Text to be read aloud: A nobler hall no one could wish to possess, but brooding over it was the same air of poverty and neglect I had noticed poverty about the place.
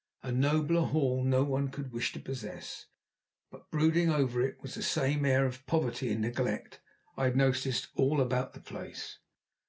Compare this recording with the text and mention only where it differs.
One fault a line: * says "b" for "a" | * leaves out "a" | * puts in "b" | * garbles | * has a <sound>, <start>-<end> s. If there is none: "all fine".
* says "all" for "poverty"